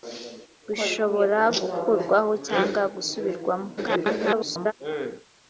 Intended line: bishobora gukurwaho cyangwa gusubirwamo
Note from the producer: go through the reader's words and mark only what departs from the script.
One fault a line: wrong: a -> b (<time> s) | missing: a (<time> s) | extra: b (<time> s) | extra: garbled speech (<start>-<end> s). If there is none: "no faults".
extra: garbled speech (3.8-4.7 s)